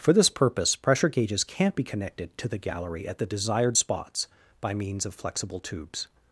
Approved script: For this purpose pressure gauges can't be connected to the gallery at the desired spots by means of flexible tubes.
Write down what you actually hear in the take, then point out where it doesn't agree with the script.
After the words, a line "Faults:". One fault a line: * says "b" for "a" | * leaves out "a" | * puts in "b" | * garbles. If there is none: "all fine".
For this purpose pressure gauges can't be connected to the gallery at the desired spots by means of flexible tubes.
Faults:
all fine